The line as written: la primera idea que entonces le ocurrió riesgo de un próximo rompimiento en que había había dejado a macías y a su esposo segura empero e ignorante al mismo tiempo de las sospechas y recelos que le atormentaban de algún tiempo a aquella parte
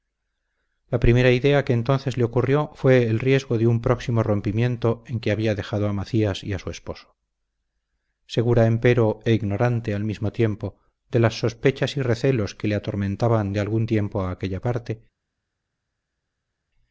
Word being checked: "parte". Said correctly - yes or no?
yes